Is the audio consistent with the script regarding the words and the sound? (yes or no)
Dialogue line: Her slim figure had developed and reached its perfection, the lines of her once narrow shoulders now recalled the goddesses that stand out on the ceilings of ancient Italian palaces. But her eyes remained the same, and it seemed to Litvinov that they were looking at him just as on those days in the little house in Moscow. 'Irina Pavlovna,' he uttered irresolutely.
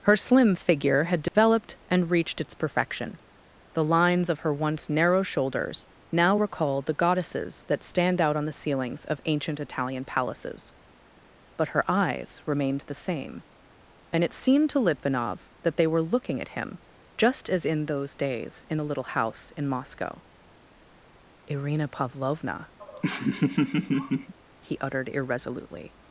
no